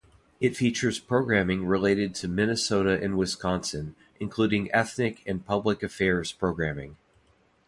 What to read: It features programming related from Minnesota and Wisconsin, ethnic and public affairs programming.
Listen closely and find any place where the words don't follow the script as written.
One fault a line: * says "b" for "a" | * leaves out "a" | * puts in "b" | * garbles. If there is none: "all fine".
* says "to" for "from"
* puts in "including"